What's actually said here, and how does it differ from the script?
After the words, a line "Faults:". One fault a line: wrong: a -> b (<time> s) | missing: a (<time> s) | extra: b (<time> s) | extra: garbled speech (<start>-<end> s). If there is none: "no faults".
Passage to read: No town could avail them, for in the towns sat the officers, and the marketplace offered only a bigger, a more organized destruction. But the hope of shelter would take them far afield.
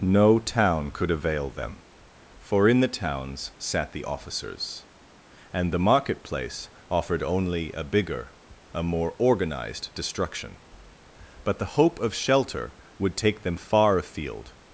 No town could avail them, for in the towns sat the officers, and the marketplace offered only a bigger, a more organized destruction. But the hope of shelter would take them far afield.
Faults:
no faults